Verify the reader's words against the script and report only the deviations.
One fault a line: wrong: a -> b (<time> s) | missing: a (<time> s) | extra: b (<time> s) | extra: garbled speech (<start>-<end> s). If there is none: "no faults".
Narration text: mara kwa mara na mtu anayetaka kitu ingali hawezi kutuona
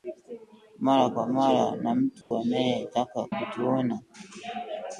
missing: kitu ingali hawezi (3.3 s)